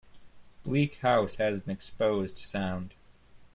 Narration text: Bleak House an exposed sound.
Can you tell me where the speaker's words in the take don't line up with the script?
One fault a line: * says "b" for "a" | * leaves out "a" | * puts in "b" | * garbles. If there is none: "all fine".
* puts in "has"